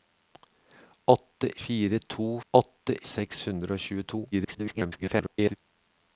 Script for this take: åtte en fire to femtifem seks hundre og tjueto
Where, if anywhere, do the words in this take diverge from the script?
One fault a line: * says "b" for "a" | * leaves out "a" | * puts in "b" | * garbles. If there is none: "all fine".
* leaves out "en"
* says "åtte" for "femtifem"
* garbles